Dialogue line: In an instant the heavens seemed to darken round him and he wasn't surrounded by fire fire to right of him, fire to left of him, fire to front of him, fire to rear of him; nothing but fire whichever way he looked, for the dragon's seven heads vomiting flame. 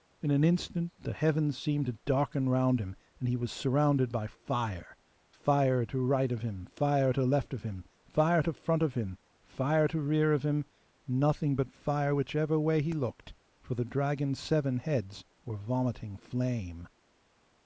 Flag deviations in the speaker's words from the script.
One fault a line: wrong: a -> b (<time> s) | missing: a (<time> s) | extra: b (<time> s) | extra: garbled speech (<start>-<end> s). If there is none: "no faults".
wrong: wasn't -> was (3.4 s)
extra: were (15.4 s)